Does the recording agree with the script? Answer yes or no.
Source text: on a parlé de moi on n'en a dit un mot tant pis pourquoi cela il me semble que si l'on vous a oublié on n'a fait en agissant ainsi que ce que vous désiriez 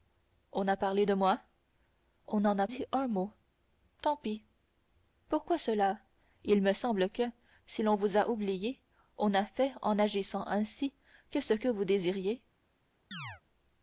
yes